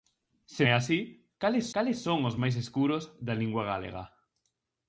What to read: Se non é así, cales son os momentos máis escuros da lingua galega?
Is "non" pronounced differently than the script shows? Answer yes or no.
yes